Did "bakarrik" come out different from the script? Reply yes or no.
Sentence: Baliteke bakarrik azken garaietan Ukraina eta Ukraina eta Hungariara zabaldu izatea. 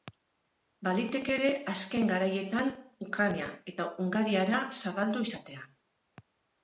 yes